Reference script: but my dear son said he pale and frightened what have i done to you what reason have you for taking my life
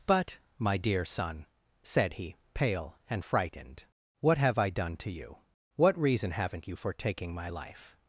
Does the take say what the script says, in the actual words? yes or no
no